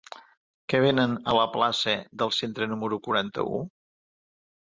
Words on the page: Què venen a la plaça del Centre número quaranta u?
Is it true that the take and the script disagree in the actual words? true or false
false